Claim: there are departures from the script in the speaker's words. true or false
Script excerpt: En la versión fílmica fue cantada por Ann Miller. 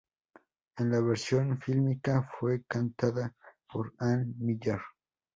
false